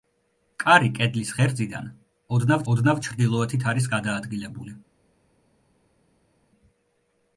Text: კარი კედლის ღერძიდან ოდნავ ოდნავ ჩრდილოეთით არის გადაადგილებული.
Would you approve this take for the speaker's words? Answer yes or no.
yes